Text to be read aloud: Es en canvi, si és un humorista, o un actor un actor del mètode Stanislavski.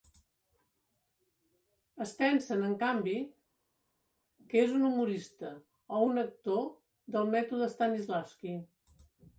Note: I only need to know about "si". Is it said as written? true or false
false